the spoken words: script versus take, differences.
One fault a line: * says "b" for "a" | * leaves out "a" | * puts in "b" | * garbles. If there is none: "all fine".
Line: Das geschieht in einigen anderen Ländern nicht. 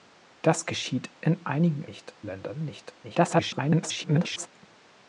* says "nicht" for "anderen"
* garbles